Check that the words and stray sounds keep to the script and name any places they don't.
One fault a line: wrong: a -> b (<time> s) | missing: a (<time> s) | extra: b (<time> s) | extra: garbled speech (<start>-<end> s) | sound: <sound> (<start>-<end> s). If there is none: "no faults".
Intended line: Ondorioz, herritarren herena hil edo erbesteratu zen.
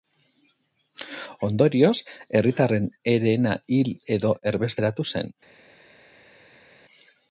no faults